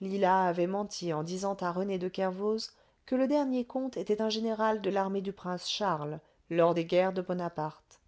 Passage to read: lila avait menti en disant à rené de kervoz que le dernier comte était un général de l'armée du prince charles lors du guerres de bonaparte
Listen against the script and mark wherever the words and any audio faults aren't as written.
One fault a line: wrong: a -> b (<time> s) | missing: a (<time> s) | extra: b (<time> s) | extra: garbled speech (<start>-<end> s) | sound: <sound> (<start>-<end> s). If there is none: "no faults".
wrong: du -> des (6.7 s)